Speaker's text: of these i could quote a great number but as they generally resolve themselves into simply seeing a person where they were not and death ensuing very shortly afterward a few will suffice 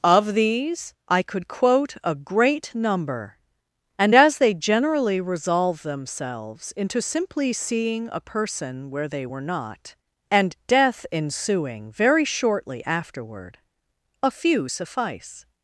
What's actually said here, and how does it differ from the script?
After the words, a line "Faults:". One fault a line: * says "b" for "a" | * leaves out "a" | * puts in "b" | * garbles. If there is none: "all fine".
of these i could quote a great number and as they generally resolve themselves into simply seeing a person where they were not and death ensuing very shortly afterward a few suffice
Faults:
* says "and" for "but"
* leaves out "will"